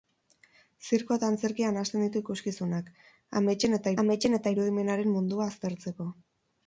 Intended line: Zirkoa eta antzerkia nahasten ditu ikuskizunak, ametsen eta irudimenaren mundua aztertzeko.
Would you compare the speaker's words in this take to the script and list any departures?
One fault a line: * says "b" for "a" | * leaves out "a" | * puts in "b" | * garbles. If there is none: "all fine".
* puts in "ametsen eta"